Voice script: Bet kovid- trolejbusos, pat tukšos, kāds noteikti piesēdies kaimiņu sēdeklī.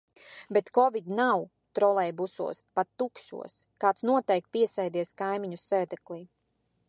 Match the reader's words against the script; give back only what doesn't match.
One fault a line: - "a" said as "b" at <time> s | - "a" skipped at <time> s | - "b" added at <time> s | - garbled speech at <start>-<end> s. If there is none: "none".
- "nav" added at 1.2 s